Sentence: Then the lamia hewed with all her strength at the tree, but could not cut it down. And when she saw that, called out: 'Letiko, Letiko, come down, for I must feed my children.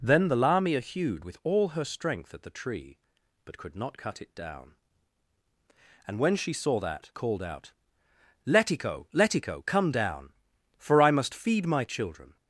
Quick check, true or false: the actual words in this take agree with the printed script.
true